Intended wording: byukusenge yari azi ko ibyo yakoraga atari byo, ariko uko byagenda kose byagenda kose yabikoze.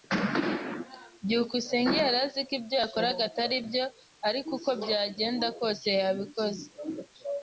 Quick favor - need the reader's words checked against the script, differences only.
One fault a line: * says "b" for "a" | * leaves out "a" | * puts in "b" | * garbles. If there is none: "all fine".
* leaves out "byagenda kose"